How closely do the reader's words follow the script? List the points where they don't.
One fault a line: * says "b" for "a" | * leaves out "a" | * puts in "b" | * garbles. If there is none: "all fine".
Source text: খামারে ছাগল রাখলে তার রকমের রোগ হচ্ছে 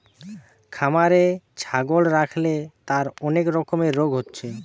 * puts in "অনেক"